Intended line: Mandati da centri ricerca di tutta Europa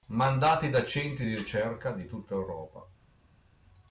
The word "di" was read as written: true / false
true